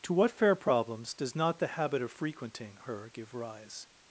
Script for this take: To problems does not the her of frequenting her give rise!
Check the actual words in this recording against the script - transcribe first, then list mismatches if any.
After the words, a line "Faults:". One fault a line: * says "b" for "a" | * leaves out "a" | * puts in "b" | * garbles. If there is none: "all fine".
To what fair problems does not the habit of frequenting her give rise!
Faults:
* puts in "what fair"
* says "habit" for "her"